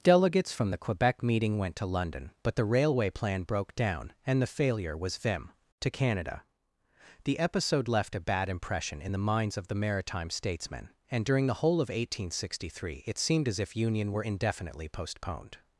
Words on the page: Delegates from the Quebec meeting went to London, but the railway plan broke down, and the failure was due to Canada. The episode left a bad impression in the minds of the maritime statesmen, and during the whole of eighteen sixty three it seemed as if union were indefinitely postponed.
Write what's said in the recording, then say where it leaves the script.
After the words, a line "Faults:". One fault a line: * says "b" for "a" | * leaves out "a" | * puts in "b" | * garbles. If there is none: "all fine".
Delegates from the Quebec meeting went to London, but the railway plan broke down, and the failure was vim to Canada. The episode left a bad impression in the minds of the maritime statesmen, and during the whole of eighteen sixty three it seemed as if union were indefinitely postponed.
Faults:
* says "vim" for "due"